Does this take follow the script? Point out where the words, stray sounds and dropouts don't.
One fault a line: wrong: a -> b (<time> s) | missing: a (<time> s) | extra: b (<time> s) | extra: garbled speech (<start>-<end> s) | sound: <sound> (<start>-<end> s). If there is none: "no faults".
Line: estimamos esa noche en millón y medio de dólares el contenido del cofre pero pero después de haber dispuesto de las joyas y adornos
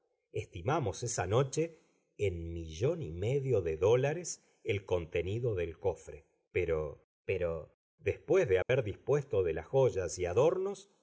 sound: dropout (8.6-8.7 s)